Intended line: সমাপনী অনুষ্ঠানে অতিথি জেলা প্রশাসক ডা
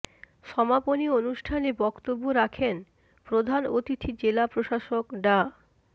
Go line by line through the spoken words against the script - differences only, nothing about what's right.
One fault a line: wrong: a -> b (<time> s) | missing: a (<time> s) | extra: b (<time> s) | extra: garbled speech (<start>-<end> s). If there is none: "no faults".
extra: বক্তব্য রাখেন প্রধান (1.8 s)